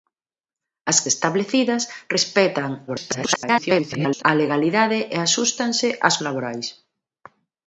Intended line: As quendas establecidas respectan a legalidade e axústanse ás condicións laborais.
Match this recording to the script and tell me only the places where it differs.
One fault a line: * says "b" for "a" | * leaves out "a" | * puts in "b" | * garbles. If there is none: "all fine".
* leaves out "quendas"
* garbles
* leaves out "condicións"